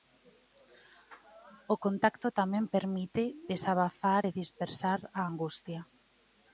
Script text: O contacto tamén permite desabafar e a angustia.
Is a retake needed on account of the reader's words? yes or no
yes